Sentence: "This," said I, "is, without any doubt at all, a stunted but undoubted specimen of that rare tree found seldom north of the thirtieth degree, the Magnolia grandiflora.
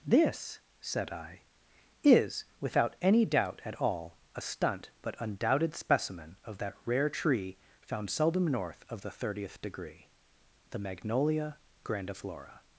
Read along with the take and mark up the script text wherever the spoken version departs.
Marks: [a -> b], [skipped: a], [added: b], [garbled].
"This," said I, "is, without any doubt at all, a [stunted -> stunt] but undoubted specimen of that rare tree found seldom north of the thirtieth degree, the Magnolia grandiflora.